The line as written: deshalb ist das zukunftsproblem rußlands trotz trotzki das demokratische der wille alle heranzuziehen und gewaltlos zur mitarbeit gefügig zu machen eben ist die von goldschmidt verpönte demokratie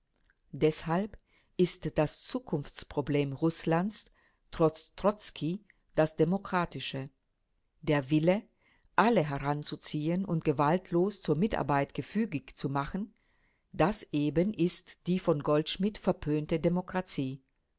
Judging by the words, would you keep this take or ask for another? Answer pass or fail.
fail